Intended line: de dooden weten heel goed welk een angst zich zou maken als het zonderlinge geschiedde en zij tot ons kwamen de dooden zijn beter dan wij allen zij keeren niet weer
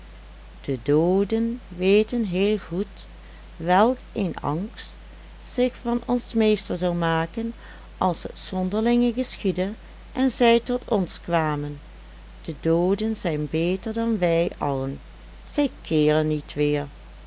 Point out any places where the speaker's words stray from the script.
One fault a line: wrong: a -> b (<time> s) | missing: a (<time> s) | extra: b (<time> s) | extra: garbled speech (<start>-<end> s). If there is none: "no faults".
extra: van ons meester (5.8 s)